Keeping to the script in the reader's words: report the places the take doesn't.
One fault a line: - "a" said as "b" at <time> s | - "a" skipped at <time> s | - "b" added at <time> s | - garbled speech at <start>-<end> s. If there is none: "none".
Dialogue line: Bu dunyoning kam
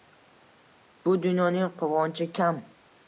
- "quvonchi" added at 1.8 s